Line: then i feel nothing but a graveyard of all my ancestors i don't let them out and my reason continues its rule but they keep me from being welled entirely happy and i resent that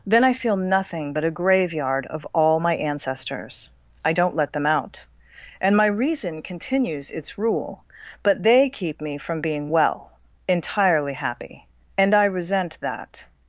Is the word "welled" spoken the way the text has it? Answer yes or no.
no